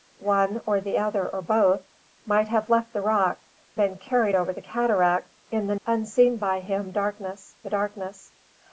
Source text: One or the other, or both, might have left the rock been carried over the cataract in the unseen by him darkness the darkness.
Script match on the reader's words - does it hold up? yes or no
yes